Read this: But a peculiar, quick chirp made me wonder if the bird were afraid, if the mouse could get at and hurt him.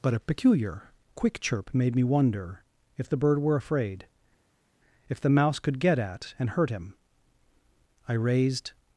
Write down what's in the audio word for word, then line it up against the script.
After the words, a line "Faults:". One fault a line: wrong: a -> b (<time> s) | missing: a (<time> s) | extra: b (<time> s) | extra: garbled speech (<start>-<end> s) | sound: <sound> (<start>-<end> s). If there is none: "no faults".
But a peculiar, quick chirp made me wonder if the bird were afraid, if the mouse could get at and hurt him. I raised
Faults:
extra: I raised (8.1 s)